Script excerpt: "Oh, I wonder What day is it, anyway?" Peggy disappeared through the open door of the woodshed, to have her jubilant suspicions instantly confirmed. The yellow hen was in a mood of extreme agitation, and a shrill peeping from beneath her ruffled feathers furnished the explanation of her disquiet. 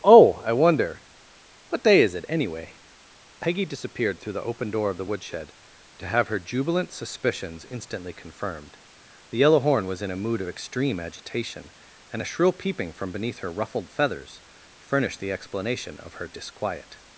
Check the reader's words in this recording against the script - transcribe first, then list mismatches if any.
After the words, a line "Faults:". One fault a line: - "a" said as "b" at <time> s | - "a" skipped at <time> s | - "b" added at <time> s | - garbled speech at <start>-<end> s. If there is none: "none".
"Oh, I wonder What day is it, anyway?" Peggy disappeared through the open door of the woodshed, to have her jubilant suspicions instantly confirmed. The yellow horn was in a mood of extreme agitation, and a shrill peeping from beneath her ruffled feathers furnished the explanation of her disquiet.
Faults:
- "hen" said as "horn" at 9.6 s